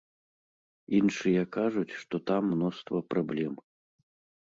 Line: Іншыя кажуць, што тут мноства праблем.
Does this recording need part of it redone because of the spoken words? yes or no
yes